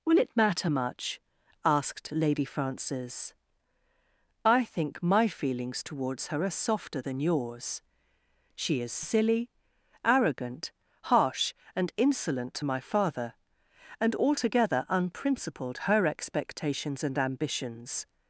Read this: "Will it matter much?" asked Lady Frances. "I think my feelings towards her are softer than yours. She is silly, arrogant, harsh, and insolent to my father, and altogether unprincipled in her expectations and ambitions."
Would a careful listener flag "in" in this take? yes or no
yes